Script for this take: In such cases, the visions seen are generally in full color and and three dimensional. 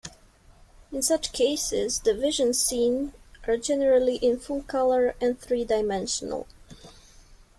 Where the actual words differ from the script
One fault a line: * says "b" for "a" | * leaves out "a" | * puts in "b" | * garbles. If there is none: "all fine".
* leaves out "and"